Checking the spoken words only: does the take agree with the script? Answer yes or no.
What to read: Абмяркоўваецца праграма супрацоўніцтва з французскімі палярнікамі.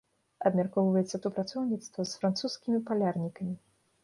no